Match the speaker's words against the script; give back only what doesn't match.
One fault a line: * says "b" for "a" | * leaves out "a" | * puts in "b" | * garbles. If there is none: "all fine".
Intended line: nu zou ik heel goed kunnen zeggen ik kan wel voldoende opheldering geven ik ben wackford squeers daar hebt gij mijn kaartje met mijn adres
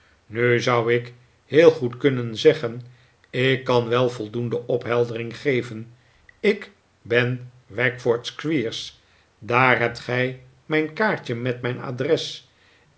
all fine